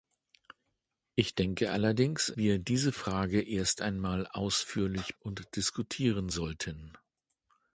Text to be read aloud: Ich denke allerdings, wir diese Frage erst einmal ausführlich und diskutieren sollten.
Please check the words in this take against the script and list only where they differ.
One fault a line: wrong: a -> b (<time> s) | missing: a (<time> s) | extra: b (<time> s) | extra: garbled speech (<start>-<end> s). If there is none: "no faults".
no faults